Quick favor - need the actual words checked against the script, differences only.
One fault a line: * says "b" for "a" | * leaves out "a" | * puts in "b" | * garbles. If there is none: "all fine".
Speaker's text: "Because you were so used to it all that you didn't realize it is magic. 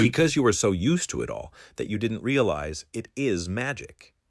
all fine